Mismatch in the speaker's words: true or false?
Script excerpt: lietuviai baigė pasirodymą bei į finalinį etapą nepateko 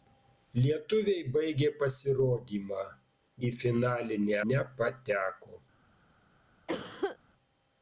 true